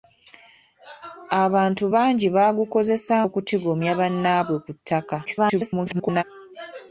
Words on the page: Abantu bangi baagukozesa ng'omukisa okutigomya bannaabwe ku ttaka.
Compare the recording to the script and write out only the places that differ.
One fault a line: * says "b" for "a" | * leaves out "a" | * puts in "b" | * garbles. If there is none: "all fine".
* leaves out "ng'omukisa"
* garbles